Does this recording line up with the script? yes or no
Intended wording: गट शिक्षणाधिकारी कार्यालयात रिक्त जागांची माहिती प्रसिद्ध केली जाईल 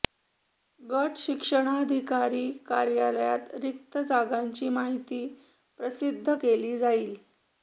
yes